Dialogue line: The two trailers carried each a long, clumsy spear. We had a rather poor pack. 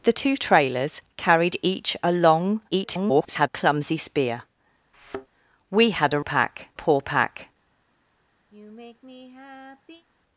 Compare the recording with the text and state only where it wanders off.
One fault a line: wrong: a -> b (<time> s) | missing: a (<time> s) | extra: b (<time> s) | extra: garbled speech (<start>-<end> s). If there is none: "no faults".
extra: garbled speech (2.7-3.5 s)
wrong: rather -> pack (6.2 s)